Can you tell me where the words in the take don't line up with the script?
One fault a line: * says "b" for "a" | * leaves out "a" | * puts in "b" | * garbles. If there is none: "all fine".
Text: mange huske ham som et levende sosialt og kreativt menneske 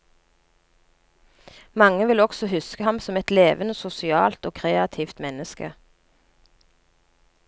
* puts in "vil også"